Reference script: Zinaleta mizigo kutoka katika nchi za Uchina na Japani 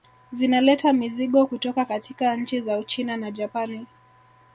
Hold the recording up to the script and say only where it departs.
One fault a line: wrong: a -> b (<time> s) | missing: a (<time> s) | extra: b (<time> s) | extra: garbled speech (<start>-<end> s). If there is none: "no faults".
no faults